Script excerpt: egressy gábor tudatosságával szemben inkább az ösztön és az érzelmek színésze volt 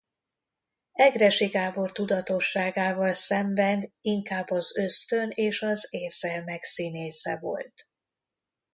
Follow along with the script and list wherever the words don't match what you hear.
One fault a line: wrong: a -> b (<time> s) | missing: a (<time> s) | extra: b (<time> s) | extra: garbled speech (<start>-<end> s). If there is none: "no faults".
no faults